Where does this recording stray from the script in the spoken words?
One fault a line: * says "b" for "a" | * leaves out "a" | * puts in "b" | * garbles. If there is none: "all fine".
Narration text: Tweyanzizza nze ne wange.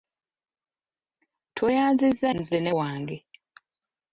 all fine